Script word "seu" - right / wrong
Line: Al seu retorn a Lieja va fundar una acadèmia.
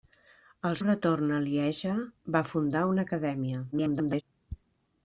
wrong